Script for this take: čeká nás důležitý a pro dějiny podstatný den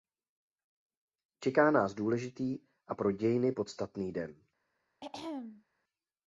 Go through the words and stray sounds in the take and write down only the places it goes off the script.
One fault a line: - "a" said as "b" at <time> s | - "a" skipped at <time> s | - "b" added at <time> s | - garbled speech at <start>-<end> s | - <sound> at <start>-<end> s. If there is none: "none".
- throat clearing at 5.0-5.6 s